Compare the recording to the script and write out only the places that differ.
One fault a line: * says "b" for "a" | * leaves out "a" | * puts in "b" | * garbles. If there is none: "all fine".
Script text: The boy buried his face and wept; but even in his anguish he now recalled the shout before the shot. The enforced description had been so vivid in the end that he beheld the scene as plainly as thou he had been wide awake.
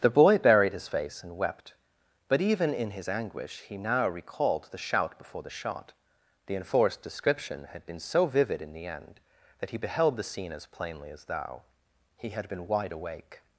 all fine